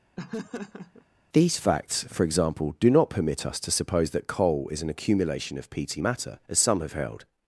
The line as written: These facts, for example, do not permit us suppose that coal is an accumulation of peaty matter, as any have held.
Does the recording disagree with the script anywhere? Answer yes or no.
yes